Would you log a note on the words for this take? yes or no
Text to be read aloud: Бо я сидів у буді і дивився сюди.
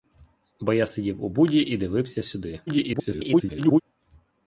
yes